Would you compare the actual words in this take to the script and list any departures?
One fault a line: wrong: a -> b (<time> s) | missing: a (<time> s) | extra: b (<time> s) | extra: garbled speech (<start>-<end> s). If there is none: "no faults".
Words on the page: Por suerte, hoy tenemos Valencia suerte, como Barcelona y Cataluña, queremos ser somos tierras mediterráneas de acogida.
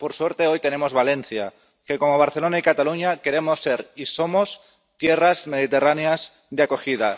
wrong: suerte -> que (1.9 s)
extra: y (3.9 s)